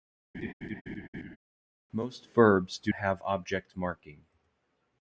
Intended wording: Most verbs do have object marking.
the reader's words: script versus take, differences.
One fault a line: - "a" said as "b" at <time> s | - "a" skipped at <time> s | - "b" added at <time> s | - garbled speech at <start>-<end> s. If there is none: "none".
none